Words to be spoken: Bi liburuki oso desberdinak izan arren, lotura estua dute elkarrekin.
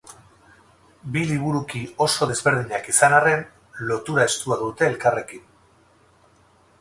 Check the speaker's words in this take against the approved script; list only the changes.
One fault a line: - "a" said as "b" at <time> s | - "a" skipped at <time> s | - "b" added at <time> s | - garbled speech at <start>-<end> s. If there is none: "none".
none